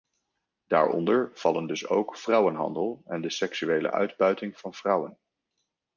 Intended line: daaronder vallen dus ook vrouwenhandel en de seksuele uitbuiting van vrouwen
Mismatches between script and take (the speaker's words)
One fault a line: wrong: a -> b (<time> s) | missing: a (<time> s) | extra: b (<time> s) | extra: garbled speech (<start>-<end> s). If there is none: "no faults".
no faults